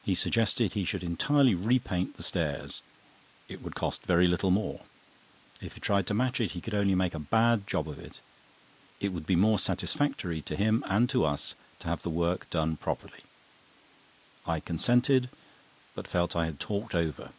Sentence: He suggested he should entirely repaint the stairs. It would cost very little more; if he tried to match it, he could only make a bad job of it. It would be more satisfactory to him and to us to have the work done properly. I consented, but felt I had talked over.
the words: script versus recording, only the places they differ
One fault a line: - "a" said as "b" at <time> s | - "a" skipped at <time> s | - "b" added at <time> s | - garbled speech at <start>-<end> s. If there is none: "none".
none